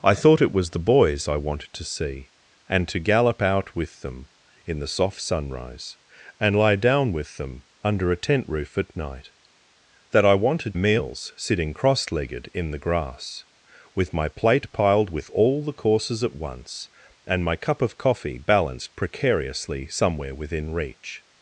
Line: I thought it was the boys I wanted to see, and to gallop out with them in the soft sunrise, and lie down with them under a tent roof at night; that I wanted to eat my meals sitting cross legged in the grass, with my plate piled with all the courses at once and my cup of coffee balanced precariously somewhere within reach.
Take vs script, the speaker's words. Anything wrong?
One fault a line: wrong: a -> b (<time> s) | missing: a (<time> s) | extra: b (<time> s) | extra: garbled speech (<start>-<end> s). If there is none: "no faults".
missing: to eat my (10.8 s)